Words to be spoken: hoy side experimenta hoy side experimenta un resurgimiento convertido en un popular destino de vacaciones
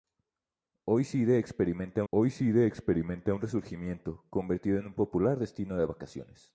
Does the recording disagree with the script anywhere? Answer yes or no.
no